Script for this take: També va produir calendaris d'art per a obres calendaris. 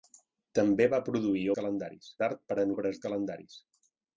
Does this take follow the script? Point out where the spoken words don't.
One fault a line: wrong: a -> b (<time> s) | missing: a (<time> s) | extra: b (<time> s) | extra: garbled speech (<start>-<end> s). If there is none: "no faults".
no faults